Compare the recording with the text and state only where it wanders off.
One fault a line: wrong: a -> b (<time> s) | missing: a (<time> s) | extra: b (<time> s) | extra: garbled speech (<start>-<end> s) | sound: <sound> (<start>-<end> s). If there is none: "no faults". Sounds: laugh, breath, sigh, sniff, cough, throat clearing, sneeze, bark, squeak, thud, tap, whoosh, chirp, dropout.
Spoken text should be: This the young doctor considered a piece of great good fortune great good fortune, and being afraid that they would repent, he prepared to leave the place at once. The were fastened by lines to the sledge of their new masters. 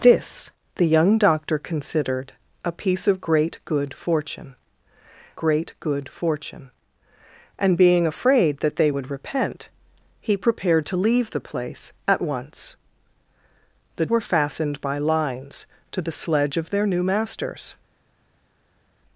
no faults